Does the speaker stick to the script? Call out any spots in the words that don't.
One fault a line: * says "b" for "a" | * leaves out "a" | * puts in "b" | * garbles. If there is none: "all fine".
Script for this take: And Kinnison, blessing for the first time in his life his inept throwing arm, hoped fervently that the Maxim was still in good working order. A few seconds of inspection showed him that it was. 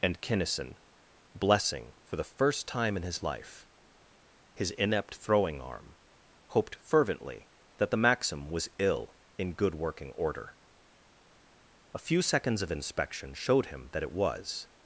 * says "ill" for "still"